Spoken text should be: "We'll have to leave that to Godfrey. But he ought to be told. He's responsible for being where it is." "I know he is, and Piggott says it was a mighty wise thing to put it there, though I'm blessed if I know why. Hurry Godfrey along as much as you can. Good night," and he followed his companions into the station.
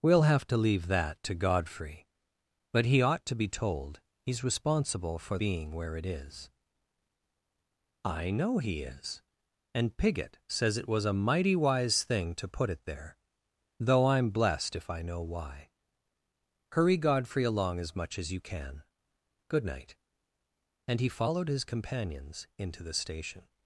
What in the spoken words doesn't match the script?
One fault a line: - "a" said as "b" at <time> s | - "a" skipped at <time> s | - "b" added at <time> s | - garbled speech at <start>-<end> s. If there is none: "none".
none